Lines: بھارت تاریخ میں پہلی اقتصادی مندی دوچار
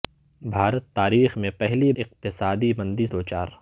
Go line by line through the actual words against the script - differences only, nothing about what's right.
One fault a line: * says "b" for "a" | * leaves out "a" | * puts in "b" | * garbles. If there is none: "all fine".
all fine